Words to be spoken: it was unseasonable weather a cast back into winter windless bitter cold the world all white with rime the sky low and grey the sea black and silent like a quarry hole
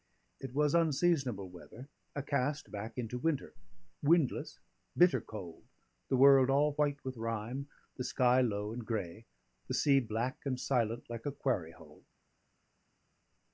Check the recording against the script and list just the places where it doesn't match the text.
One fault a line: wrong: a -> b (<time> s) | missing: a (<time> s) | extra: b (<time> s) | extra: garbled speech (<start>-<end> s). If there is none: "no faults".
no faults